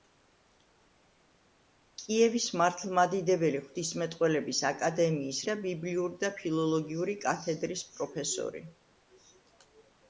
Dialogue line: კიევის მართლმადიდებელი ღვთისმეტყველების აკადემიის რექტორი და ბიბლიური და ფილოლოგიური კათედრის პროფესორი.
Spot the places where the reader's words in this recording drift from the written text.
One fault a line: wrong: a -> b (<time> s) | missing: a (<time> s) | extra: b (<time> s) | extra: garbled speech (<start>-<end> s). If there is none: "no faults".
missing: რექტორი (5.4 s)